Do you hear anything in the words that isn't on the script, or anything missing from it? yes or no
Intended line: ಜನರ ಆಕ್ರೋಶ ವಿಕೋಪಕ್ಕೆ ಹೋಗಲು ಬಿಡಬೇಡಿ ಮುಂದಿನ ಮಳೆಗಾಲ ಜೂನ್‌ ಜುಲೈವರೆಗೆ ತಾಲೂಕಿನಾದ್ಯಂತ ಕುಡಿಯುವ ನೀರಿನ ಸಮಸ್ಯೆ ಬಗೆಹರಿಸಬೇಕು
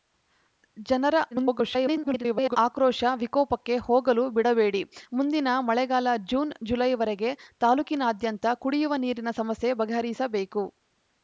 yes